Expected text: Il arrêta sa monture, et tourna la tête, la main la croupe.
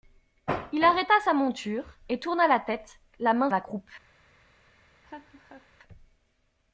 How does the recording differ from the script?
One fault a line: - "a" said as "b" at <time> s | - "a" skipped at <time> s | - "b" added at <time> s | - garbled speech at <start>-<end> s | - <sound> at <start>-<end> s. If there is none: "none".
- laugh at 5.0-5.7 s